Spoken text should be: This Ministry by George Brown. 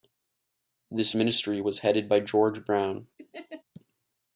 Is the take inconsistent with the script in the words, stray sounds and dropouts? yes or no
yes